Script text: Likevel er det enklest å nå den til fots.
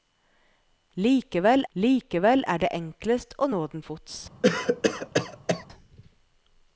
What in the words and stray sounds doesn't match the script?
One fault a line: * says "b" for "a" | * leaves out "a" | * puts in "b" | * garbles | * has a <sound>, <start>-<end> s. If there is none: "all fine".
* puts in "likevel"
* leaves out "til"
* has a cough, 4.4-5.7 s